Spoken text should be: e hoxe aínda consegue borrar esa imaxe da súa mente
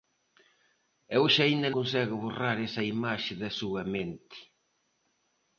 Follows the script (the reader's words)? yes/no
yes